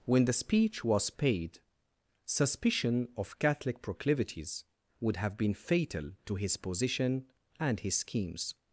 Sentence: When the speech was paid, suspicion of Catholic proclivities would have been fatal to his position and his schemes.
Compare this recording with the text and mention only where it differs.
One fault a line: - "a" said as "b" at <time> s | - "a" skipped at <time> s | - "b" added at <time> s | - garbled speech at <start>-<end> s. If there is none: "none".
none